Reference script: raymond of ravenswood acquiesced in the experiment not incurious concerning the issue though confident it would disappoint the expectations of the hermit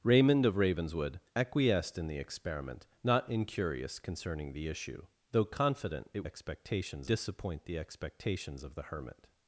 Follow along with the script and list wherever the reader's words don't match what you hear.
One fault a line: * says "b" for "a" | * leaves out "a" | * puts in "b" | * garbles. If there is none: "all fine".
* says "expectations" for "would"